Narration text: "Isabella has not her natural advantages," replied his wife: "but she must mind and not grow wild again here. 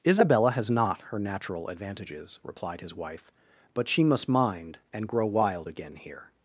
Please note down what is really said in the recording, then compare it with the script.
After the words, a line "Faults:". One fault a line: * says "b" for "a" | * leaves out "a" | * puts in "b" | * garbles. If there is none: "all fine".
"Isabella has not her natural advantages," replied his wife: "but she must mind and grow wild again here.
Faults:
* leaves out "not"